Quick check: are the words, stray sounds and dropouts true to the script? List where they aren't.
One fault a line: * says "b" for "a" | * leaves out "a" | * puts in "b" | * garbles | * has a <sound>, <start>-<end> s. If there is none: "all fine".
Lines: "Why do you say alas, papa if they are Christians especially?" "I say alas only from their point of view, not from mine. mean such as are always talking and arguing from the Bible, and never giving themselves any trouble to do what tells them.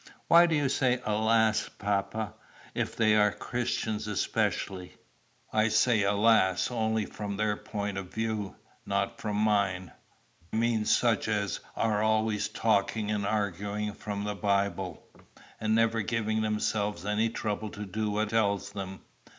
all fine